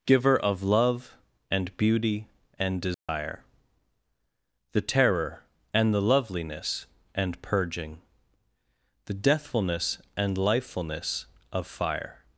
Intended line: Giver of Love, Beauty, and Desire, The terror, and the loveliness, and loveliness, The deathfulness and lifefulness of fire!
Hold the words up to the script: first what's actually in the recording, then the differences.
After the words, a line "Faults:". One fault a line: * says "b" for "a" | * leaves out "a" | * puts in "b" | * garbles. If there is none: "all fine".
Giver of Love, and Beauty, and Desire, The terror, and the loveliness, and purging, The deathfulness and lifefulness of fire!
Faults:
* puts in "and"
* says "purging" for "loveliness"